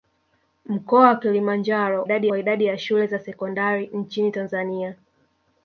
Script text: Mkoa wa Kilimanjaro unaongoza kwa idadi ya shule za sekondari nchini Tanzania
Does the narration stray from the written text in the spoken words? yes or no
yes